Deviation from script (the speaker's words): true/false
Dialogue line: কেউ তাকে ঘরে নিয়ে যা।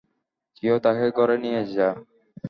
false